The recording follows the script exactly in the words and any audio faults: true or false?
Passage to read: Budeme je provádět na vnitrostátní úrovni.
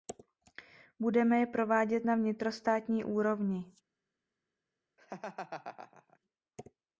false